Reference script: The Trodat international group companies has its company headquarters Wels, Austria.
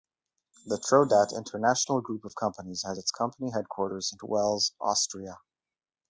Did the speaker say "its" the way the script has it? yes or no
yes